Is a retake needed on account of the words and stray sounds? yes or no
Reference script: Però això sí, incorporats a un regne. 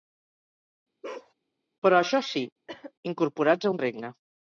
yes